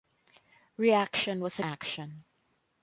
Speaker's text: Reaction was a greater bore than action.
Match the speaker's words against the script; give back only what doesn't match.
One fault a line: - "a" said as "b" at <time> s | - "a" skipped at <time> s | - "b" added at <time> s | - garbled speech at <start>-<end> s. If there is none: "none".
- "greater bore than" skipped at 1.6 s